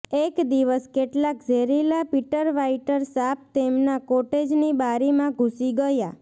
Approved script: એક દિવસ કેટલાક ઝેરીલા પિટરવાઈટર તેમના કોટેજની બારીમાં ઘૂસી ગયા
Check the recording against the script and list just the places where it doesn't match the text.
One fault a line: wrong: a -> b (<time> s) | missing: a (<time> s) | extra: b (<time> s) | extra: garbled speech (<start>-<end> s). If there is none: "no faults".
extra: સાપ (3.1 s)